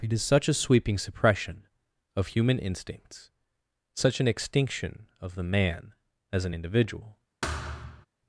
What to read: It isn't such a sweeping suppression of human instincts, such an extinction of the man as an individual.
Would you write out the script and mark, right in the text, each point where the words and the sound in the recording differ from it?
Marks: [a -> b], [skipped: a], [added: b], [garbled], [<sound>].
It [isn't -> is] such a sweeping suppression of human instincts, such an extinction of the man as an individual. [thud]